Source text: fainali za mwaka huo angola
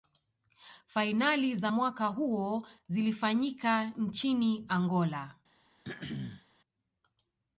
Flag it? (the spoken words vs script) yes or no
yes